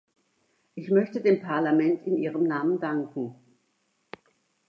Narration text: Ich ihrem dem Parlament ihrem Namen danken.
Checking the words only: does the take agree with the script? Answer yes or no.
no